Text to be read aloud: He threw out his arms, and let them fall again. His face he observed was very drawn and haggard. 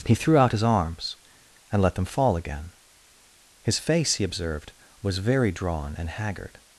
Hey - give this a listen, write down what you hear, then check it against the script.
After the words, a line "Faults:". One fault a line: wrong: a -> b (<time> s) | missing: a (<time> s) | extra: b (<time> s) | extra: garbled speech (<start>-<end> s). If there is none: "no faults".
He threw out his arms, and let them fall again. His face he observed was very drawn and haggard.
Faults:
no faults